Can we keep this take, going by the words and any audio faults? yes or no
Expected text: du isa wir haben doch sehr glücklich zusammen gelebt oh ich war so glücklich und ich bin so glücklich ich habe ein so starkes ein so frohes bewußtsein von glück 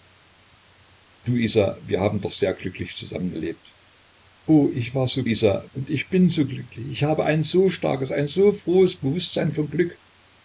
no